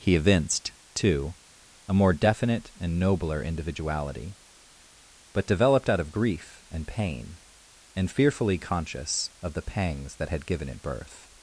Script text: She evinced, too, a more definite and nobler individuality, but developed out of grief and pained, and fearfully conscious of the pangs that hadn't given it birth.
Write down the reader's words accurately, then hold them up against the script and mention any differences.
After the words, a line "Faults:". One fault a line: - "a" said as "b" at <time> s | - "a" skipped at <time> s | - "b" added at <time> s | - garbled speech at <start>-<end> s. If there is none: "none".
He evinced, too, a more definite and nobler individuality, but developed out of grief and pain, and fearfully conscious of the pangs that had given it birth.
Faults:
- "She" said as "He" at 0.0 s
- "pained" said as "pain" at 6.9 s
- "hadn't" said as "had" at 10.3 s